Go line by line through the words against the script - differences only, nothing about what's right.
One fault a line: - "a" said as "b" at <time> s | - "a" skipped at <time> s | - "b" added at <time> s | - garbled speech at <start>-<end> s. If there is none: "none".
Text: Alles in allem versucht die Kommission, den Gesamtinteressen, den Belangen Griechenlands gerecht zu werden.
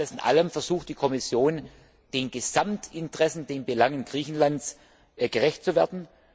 none